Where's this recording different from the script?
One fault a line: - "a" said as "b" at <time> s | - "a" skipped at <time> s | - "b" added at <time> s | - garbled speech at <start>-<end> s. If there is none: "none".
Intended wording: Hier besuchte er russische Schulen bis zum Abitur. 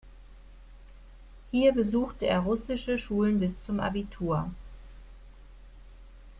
none